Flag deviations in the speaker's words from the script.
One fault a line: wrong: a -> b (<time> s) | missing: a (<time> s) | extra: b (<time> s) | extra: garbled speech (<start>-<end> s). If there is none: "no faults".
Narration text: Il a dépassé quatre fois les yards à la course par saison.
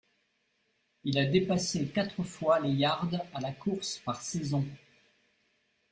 no faults